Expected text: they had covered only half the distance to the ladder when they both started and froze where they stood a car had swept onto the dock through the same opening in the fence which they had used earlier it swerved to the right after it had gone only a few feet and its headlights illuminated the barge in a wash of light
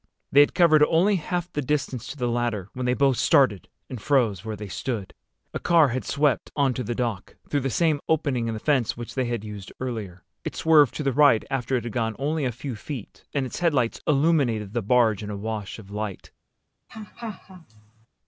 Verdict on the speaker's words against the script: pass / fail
pass